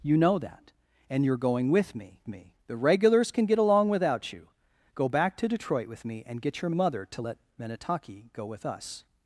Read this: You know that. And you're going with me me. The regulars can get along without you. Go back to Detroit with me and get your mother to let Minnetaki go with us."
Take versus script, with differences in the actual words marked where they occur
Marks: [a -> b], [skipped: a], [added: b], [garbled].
You know that. And you're going with me me. The regulars can get along without you. Go back to Detroit with me and get your mother to let Minnetaki go with us."